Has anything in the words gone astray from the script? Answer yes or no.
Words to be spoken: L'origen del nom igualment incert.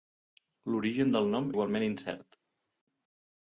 no